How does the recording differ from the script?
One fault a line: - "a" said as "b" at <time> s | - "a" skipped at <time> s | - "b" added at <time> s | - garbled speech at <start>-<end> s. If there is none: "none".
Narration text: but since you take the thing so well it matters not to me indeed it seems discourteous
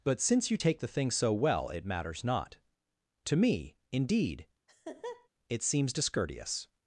none